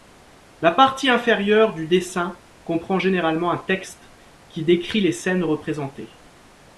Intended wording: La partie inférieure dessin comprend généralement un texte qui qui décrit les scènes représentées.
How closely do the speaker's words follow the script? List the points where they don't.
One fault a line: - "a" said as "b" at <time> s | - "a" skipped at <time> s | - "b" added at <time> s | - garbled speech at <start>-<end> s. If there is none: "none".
- "du" added at 1.8 s
- "qui" skipped at 4.6 s